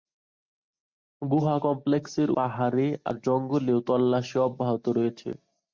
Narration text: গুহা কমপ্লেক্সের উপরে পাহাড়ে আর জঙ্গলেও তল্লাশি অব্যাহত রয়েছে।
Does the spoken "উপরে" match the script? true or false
false